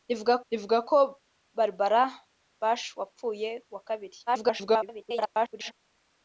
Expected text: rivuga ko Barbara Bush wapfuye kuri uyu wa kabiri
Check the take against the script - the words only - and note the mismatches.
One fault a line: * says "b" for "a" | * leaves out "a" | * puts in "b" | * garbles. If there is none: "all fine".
* puts in "rivuga"
* leaves out "kuri uyu"
* garbles